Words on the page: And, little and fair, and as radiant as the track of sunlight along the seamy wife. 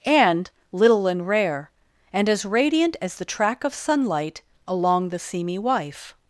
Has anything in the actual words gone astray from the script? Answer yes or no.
yes